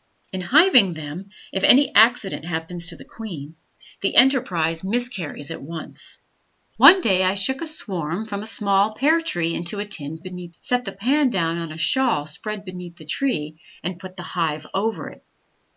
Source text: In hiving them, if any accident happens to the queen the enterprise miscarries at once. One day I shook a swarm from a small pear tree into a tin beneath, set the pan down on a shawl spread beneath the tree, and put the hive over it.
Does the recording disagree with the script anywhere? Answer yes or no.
no